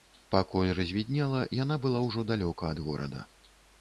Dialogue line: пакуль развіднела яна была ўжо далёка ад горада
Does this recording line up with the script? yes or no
yes